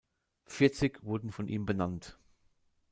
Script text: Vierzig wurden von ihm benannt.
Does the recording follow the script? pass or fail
pass